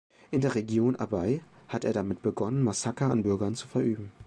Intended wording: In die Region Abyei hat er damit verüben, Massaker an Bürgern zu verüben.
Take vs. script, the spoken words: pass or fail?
fail